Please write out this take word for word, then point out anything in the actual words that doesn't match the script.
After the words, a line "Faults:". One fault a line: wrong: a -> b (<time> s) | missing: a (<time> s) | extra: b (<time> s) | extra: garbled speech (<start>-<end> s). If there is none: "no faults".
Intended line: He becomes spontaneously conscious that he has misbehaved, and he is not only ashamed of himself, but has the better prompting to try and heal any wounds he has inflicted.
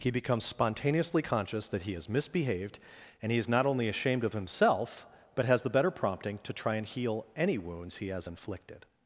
He becomes spontaneously conscious that he has misbehaved, and he is not only ashamed of himself, but has the better prompting to try and heal any wounds he has inflicted.
Faults:
no faults